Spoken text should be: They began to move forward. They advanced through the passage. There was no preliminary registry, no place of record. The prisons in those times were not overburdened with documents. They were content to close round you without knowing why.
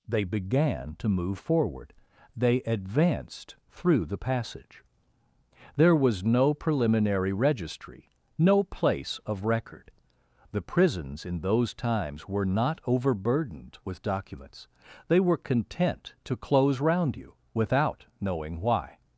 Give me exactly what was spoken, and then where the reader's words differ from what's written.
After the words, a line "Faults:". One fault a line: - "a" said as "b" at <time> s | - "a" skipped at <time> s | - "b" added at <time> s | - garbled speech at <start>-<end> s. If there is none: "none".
They began to move forward. They advanced through the passage. There was no preliminary registry, no place of record. The prisons in those times were not overburdened with documents. They were content to close round you without knowing why.
Faults:
none